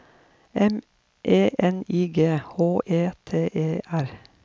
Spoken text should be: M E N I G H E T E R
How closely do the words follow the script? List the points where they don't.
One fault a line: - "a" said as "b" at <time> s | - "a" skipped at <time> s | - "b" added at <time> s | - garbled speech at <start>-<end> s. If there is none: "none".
none